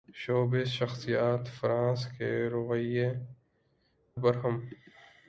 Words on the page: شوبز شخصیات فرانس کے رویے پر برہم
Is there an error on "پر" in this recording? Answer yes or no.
yes